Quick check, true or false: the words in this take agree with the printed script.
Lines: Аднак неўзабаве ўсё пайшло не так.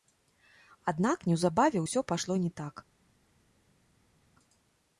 true